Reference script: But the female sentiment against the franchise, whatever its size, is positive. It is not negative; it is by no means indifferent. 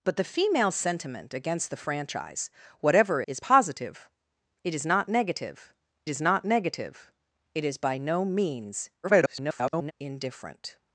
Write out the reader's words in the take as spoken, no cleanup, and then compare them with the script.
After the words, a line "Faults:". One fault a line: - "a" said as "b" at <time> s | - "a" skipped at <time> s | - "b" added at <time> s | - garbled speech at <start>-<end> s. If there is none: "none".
But the female sentiment against the franchise, whatever is positive. It is not negative is not negative; it is by no means [garbled] indifferent.
Faults:
- "its size" said as "is positive It" at 3.3 s
- "positive It" said as "not negative" at 4.9 s
- garbled speech at 9.0-9.9 s